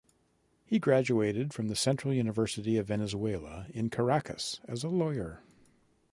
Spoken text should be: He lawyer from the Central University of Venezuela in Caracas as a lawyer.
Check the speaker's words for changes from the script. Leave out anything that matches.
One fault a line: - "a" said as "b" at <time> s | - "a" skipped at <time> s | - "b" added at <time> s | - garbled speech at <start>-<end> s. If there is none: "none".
- "lawyer" said as "graduated" at 0.8 s